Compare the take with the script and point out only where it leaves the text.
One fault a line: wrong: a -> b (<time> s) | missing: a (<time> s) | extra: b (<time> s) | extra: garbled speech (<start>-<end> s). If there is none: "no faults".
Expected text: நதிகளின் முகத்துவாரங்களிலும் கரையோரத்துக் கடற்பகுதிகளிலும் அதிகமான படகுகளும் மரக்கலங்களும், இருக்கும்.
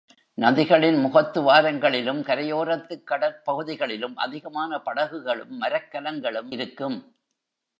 no faults